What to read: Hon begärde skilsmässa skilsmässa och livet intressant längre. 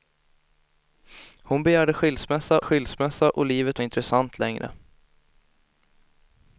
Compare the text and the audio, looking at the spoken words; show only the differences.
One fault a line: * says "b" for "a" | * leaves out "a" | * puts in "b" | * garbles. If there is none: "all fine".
all fine